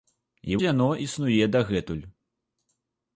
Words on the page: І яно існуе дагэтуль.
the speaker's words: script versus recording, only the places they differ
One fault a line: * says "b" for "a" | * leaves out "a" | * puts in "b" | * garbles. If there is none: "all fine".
all fine